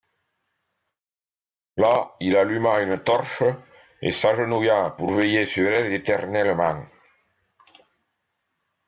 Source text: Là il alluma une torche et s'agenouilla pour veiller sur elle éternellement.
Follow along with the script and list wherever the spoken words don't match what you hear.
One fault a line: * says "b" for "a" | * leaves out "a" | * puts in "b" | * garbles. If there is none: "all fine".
all fine